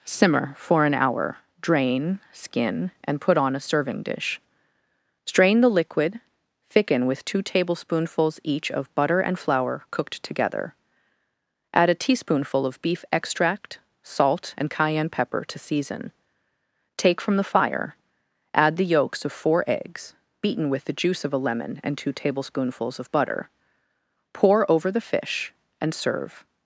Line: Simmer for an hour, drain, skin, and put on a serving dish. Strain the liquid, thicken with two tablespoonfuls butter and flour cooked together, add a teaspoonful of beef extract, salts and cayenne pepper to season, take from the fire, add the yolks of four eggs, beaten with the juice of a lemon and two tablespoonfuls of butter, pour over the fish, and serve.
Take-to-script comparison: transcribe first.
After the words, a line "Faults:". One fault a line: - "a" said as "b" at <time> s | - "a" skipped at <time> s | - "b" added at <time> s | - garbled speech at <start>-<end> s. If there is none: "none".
Simmer for an hour, drain, skin, and put on a serving dish. Strain the liquid, thicken with two tablespoonfuls each of butter and flour cooked together, add a teaspoonful of beef extract, salt and cayenne pepper to season, take from the fire, add the yolks of four eggs, beaten with the juice of a lemon and two tablespoonfuls of butter, pour over the fish, and serve.
Faults:
- "each of" added at 8.4 s
- "salts" said as "salt" at 14.0 s